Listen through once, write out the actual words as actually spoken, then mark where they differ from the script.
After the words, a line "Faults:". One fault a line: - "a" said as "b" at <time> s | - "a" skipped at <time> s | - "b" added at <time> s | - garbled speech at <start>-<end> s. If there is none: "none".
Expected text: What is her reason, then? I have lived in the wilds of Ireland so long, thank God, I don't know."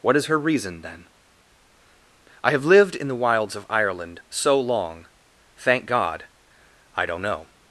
What is her reason, then? I have lived in the wilds of Ireland so long, thank God, I don't know."
Faults:
none